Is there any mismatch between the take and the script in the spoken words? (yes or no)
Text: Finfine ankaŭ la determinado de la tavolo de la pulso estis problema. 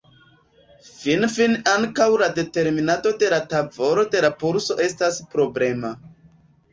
yes